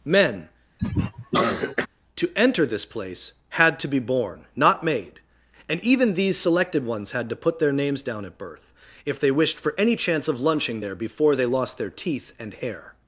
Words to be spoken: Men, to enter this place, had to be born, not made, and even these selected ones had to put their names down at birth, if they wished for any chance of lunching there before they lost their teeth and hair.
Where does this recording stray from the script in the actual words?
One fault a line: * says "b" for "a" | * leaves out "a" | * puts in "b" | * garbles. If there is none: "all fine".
all fine